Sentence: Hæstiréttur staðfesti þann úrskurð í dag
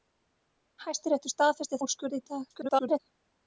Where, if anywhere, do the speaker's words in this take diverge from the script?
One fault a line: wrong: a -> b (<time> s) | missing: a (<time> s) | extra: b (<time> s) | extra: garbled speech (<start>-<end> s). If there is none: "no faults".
missing: þann (1.8 s)
extra: garbled speech (2.5-3.0 s)